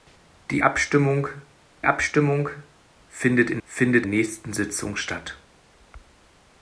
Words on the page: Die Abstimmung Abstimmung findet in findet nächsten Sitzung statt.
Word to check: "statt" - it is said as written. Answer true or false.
true